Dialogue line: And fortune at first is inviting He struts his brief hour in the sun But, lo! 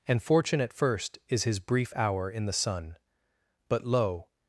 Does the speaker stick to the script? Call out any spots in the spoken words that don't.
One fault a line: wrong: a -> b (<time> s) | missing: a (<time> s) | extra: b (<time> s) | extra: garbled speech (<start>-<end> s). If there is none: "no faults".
missing: inviting He struts (1.4 s)